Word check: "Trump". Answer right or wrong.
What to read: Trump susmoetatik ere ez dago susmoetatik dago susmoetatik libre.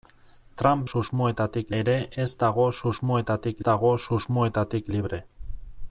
right